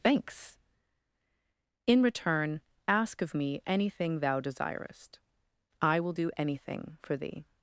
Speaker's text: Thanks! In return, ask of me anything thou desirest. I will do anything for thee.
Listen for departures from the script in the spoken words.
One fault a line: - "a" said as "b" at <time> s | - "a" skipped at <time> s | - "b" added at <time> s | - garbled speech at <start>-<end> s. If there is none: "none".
none